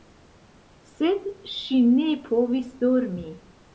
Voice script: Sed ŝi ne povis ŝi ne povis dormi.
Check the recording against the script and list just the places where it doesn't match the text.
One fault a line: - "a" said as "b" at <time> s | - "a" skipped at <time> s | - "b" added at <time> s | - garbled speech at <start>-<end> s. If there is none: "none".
- "ŝi ne povis" skipped at 2.7 s